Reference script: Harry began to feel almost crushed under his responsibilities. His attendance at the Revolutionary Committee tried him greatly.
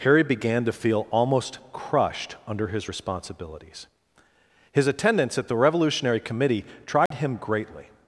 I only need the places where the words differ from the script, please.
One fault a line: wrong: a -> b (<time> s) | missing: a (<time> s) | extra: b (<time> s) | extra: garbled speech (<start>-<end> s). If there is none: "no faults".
no faults